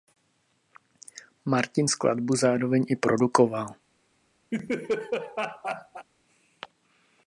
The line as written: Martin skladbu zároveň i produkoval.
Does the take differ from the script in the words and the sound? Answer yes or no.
yes